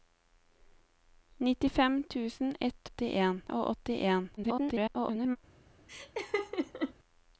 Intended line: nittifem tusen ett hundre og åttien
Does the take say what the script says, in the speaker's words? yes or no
no